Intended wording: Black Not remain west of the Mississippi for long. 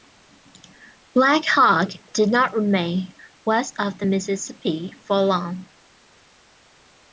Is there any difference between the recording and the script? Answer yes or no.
yes